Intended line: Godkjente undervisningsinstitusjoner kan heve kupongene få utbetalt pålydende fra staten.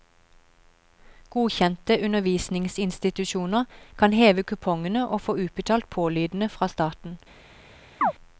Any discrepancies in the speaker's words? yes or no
yes